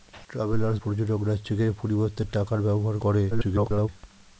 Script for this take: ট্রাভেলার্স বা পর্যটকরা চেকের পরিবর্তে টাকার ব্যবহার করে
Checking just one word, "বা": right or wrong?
wrong